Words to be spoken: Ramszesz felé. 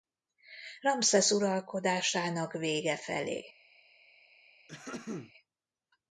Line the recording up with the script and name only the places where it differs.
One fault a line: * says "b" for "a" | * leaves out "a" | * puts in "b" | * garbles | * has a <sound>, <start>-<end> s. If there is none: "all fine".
* puts in "uralkodásának vége"
* has a throat clearing, 4.7-5.3 s